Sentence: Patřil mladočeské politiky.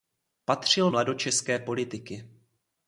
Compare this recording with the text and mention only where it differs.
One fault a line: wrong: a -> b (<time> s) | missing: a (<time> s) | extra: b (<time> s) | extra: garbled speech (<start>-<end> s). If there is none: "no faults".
no faults